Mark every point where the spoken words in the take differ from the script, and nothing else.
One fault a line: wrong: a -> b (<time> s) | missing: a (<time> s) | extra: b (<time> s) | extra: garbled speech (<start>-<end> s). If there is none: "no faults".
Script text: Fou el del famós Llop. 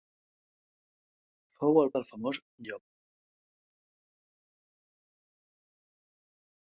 no faults